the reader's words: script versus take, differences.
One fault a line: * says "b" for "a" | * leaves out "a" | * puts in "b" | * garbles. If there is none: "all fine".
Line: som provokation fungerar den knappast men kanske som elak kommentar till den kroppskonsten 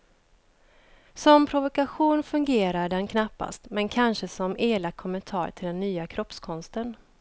* puts in "nya"